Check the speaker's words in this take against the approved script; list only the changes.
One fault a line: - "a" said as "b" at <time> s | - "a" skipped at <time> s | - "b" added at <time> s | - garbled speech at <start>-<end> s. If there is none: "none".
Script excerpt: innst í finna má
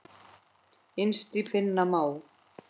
none